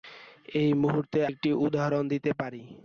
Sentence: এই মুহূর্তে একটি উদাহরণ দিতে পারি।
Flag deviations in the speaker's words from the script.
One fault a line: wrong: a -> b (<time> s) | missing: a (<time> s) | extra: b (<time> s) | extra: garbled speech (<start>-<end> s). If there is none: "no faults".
no faults